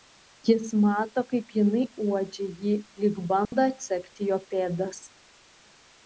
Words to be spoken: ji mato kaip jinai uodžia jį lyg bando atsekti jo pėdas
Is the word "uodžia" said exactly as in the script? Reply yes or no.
yes